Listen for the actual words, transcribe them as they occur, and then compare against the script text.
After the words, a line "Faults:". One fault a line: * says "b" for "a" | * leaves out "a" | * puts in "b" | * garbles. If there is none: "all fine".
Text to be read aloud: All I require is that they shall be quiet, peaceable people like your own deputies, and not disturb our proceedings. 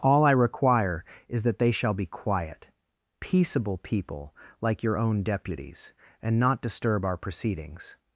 All I require is that they shall be quiet, peaceable people like your own deputies, and not disturb our proceedings.
Faults:
all fine